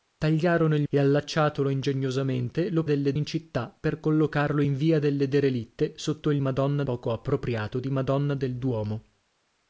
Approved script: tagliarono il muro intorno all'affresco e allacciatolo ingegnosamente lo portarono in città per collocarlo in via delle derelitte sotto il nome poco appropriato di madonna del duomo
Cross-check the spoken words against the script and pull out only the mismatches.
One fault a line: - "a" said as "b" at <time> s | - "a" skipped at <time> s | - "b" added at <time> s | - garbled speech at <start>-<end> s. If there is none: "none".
- "muro intorno all'affresco" skipped at 0.9 s
- "portarono" said as "delle" at 2.8 s
- "nome" said as "madonna" at 6.4 s